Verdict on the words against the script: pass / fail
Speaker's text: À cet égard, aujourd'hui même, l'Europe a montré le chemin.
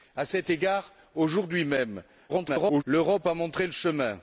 fail